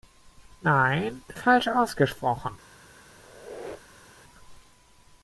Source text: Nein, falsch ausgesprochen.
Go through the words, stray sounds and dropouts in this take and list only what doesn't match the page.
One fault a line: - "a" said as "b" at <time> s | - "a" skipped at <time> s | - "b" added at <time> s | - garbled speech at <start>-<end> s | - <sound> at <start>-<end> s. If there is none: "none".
- squeak at 3.1-4.2 s